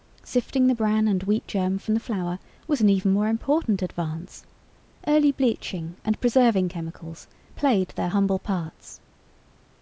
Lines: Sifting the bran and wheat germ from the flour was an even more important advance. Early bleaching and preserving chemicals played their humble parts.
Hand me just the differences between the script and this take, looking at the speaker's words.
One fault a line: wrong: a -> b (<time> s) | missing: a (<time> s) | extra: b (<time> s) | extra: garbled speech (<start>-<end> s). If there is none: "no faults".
no faults